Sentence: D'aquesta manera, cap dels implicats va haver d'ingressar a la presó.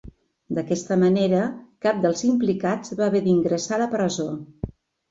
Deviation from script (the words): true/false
false